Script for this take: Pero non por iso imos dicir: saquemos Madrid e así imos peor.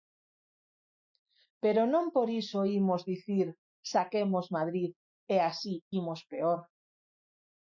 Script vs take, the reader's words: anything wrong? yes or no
no